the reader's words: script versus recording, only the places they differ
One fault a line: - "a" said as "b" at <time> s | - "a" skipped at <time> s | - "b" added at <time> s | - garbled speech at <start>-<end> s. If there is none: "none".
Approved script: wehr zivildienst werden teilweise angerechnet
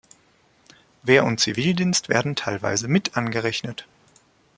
- "und" added at 1.2 s
- "mit" added at 2.9 s